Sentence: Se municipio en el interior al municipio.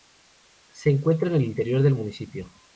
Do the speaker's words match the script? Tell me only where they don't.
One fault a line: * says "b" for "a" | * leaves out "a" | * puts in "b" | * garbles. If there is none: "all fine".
* says "encuentra" for "municipio"
* says "del" for "al"